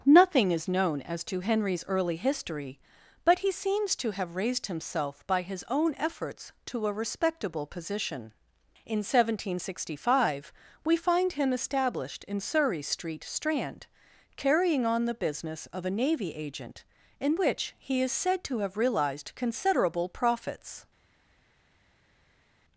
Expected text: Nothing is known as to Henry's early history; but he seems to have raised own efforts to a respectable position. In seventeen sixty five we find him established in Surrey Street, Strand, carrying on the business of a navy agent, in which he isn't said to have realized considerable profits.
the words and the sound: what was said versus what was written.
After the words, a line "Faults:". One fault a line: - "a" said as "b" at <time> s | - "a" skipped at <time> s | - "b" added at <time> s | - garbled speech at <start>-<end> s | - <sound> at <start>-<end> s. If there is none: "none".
Nothing is known as to Henry's early history; but he seems to have raised himself by his own efforts to a respectable position. In seventeen sixty five we find him established in Surrey Street, Strand, carrying on the business of a navy agent, in which he is said to have realized considerable profits.
Faults:
- "himself by his" added at 4.7 s
- "isn't" said as "is" at 18.0 s